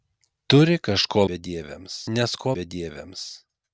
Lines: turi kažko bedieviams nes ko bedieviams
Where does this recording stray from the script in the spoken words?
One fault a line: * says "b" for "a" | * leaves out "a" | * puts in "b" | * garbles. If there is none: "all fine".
all fine